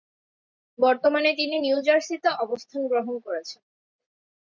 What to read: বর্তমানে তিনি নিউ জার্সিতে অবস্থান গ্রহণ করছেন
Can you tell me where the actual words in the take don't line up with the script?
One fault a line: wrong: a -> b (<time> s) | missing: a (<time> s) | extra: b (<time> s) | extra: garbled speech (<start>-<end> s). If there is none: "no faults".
no faults